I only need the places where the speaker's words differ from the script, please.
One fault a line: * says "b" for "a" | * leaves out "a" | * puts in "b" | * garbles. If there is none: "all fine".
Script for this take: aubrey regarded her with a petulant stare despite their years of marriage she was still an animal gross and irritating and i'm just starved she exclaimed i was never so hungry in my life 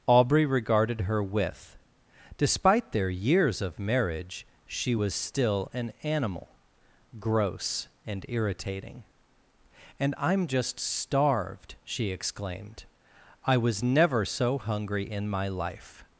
* leaves out "a petulant stare"